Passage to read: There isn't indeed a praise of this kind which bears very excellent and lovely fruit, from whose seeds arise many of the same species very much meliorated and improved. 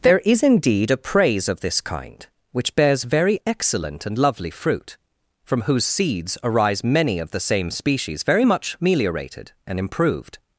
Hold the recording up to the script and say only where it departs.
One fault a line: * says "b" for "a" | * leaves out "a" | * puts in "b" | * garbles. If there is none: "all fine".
* says "is" for "isn't"